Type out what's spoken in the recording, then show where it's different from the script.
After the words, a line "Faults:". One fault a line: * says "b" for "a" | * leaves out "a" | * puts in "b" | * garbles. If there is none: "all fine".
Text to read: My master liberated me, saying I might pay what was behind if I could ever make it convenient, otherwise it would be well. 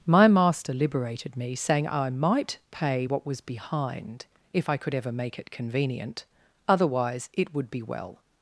My master liberated me, saying I might pay what was behind if I could ever make it convenient, otherwise it would be well.
Faults:
all fine